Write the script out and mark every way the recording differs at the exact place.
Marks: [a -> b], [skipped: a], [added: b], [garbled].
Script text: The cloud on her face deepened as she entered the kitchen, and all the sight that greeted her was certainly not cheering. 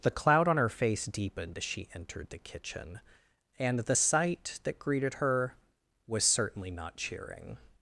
The cloud on her face deepened as she entered the kitchen, and [skipped: all] the sight that greeted her was certainly not cheering.